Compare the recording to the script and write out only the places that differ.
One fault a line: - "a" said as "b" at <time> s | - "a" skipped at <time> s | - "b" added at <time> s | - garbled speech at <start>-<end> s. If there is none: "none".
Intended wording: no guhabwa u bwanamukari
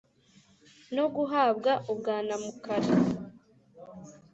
none